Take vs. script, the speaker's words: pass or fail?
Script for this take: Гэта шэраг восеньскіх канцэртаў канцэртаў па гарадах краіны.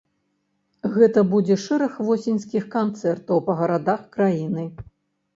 fail